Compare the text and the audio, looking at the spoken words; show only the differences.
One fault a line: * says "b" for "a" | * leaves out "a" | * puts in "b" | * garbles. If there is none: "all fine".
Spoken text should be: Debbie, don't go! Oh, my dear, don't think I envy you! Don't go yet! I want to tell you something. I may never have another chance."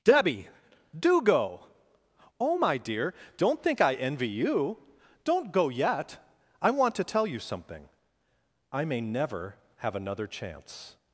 * says "do" for "don't"